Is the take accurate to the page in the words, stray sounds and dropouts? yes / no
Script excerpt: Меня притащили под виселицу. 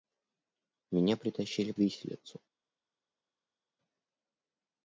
no